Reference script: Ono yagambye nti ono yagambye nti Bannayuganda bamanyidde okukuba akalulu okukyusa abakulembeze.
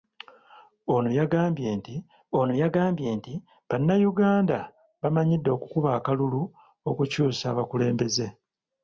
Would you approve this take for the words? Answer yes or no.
yes